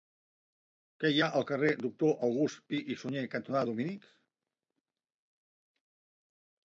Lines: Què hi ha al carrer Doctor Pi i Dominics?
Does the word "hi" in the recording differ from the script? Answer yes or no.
no